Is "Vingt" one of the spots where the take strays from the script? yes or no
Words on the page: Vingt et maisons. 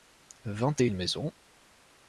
no